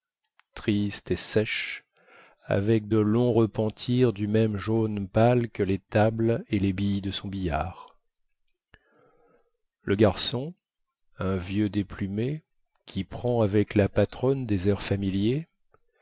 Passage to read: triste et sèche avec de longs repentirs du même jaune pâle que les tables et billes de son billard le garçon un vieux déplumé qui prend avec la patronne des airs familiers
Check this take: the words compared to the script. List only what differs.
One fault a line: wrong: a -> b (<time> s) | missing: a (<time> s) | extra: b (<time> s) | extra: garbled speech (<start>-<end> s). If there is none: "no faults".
extra: les (6.6 s)